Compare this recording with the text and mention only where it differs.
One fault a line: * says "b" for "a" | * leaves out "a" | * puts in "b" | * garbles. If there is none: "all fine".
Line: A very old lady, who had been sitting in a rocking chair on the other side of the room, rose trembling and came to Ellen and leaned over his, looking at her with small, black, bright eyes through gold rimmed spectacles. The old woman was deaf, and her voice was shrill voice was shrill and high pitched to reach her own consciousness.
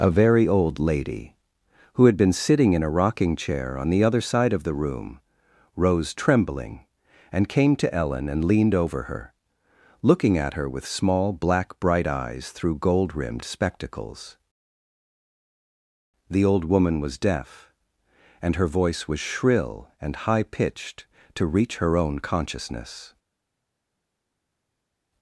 * says "her" for "his"
* leaves out "voice was shrill"